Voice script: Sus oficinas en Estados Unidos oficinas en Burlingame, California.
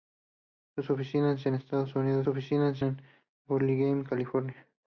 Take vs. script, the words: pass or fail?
pass